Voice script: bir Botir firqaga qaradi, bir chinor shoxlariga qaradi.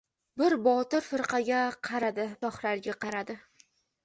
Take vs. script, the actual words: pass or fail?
fail